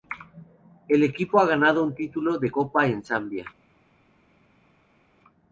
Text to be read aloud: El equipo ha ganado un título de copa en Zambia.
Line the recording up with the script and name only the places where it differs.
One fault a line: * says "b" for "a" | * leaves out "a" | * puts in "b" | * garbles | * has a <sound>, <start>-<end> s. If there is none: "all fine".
all fine